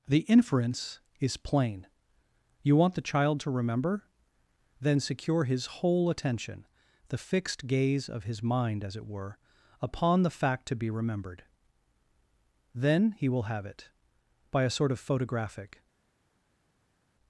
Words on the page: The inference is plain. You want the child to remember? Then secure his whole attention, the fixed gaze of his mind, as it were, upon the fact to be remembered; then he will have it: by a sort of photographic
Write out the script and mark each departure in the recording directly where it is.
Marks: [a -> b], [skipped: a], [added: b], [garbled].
The inference is plain. You want the child to remember? Then secure his whole attention, the fixed gaze of his mind, as it were, upon the fact to be remembered; then he will have it: by a sort of photographic